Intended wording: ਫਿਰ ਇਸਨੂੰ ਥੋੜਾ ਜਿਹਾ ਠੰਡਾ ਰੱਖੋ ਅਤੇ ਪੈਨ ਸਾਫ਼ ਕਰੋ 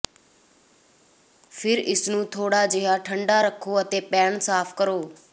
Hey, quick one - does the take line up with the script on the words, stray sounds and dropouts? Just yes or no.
yes